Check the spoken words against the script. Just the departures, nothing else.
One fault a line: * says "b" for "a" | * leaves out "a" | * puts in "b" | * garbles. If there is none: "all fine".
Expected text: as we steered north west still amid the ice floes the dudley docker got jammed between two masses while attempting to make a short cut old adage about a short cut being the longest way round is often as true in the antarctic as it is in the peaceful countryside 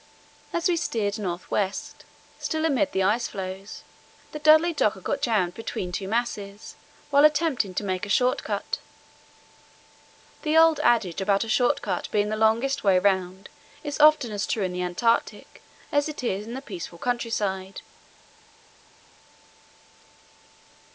* puts in "the"